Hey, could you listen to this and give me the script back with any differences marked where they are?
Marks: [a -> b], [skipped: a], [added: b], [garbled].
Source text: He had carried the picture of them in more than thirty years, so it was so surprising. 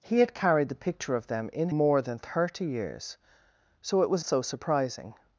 He had carried the picture of them in more than thirty years, so it was so surprising.